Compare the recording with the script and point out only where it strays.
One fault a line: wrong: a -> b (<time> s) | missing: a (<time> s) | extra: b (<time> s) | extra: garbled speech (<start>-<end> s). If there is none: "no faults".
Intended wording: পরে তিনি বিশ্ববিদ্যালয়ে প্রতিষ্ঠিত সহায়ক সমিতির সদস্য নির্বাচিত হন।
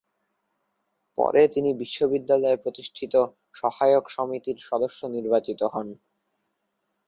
no faults